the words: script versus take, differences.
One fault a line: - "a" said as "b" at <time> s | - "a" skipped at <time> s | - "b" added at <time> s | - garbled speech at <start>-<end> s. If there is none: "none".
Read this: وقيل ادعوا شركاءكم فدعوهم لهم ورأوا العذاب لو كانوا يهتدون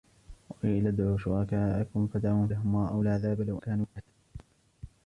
none